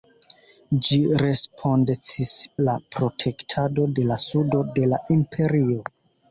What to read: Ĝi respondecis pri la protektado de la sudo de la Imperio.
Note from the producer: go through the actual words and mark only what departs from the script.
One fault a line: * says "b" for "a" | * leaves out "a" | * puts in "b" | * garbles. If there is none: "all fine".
* leaves out "pri"